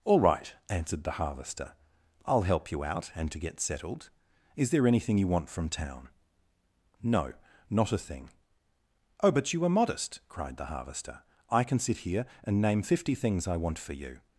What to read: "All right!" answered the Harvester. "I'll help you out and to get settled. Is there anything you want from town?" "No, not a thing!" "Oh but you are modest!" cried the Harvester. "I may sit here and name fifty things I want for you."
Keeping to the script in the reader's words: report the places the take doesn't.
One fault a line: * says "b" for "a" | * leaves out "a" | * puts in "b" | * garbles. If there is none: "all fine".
* says "can" for "may"